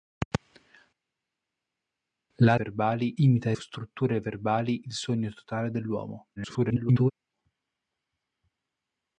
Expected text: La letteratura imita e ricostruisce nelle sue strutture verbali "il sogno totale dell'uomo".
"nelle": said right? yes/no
no